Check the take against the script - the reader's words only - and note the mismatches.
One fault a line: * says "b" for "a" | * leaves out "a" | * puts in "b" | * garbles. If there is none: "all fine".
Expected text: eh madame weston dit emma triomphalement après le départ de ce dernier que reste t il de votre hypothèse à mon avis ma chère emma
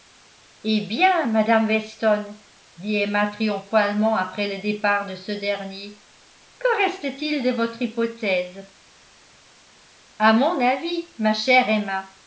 * puts in "bien"